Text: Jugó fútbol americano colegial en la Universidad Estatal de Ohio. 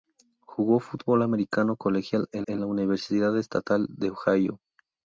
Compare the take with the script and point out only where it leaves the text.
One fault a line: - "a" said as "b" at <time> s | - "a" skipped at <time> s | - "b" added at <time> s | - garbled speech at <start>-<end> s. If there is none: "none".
- "en" added at 2.5 s